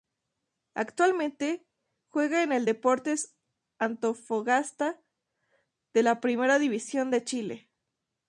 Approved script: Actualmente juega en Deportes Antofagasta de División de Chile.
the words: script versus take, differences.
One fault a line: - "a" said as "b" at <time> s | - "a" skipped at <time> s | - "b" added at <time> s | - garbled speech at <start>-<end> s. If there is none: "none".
- "el" added at 2.5 s
- "la Primera" added at 6.0 s